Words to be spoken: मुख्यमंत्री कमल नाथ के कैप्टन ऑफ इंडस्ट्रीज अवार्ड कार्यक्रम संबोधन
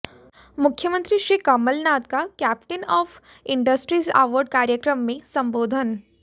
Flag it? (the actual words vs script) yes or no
yes